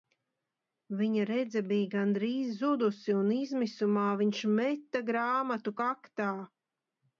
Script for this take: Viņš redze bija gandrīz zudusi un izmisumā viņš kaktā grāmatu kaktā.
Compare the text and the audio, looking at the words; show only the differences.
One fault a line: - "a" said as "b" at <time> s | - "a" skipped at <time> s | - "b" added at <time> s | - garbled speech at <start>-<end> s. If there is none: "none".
- "Viņš" said as "Viņa" at 1.0 s
- "kaktā" said as "meta" at 4.6 s